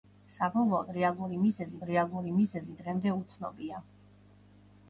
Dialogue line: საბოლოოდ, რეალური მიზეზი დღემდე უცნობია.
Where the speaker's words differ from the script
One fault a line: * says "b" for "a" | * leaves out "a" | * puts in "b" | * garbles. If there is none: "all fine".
* puts in "რეალური მიზეზი"